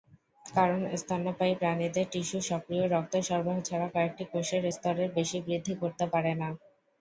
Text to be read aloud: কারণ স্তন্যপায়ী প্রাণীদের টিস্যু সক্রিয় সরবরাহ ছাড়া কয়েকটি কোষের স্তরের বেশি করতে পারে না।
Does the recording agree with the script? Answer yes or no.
no